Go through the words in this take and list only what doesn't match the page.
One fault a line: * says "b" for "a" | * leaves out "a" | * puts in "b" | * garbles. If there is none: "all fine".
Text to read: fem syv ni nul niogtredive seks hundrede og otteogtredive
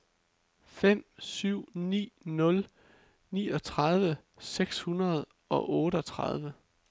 all fine